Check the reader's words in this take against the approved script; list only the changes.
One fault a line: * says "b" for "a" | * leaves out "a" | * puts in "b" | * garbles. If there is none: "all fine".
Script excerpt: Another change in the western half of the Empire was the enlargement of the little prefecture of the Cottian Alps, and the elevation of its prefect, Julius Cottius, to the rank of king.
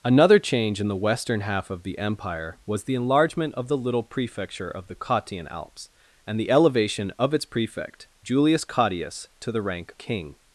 * leaves out "of"